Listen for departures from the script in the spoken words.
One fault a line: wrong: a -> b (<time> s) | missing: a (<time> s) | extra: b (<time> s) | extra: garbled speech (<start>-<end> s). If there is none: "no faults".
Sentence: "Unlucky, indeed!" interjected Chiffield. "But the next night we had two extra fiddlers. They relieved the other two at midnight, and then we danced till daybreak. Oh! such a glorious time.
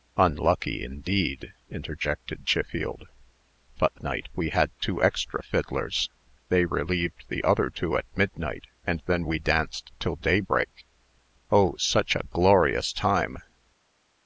missing: next (4.0 s)